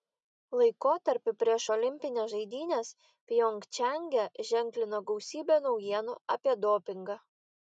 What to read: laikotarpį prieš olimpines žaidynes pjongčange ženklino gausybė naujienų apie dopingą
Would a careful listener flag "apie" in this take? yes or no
no